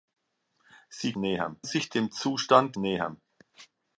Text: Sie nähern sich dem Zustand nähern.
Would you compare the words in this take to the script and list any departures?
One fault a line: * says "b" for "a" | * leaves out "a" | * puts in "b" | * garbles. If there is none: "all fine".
all fine